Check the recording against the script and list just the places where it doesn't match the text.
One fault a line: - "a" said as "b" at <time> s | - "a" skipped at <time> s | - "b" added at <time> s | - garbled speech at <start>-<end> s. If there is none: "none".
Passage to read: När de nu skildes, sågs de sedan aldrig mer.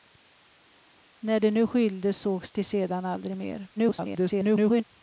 - garbled speech at 3.8-4.8 s